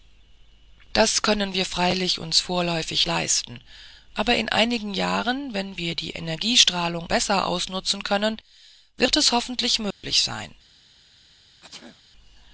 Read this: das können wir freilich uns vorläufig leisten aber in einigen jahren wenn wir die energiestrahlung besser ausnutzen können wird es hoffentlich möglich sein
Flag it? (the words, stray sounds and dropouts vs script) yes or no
yes